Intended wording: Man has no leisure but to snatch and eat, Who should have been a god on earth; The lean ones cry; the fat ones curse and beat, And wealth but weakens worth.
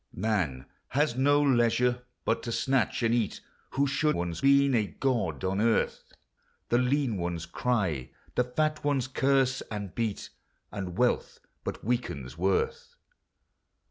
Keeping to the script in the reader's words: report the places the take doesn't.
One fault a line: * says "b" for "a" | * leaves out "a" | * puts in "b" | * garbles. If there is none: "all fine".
* says "ones" for "have"